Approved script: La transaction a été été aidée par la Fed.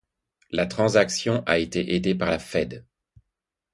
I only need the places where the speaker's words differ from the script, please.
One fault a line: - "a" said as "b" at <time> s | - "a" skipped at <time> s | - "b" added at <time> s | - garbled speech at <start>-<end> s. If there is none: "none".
- "été" skipped at 1.9 s